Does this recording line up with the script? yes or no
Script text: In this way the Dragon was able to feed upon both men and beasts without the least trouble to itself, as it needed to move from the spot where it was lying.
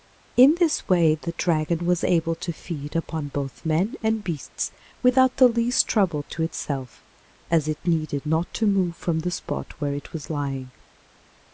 no